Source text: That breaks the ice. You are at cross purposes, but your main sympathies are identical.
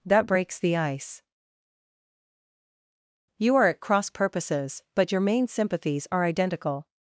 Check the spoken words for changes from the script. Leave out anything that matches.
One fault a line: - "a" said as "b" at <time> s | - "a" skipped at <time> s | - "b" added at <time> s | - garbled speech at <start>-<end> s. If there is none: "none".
none